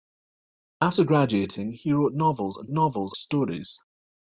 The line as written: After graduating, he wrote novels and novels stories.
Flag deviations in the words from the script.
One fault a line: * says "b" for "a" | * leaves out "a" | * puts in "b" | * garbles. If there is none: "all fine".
all fine